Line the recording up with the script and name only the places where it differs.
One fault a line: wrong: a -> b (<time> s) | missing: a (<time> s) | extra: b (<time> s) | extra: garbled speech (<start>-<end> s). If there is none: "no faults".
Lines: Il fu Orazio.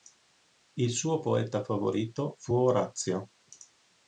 extra: suo poeta favorito (0.9 s)